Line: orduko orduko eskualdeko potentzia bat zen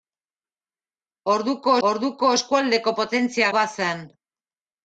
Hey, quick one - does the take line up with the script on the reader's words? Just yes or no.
yes